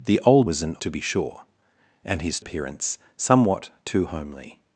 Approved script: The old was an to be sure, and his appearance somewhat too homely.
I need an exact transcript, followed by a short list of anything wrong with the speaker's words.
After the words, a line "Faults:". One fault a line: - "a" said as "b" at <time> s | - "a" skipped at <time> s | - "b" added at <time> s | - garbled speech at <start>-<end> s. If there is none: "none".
The old was an to be sure, and his appearance somewhat too homely.
Faults:
none